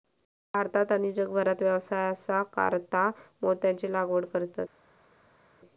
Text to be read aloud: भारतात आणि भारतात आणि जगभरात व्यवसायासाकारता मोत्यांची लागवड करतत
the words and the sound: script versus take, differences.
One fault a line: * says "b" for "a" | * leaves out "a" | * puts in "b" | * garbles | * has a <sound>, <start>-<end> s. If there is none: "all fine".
* leaves out "भारतात आणि"